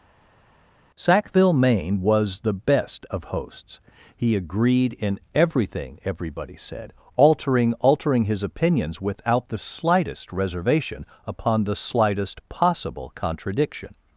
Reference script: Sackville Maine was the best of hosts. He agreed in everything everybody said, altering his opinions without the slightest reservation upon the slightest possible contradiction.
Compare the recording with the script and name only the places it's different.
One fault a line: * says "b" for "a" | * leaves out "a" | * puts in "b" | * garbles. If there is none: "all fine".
* puts in "altering"